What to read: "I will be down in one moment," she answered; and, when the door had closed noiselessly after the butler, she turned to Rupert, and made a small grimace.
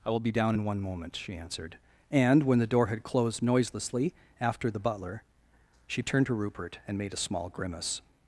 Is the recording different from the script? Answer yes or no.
no